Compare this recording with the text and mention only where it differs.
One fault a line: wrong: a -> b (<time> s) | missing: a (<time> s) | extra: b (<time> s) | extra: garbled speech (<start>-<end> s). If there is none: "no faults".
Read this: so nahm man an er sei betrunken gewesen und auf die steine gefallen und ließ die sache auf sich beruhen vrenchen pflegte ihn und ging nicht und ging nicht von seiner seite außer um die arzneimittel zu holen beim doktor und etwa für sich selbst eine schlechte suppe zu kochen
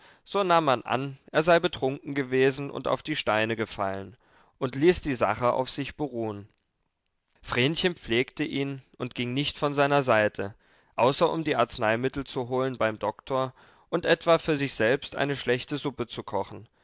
missing: und ging nicht (9.6 s)